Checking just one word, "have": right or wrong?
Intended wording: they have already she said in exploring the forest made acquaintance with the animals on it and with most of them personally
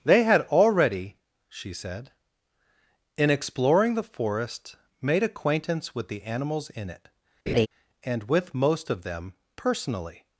wrong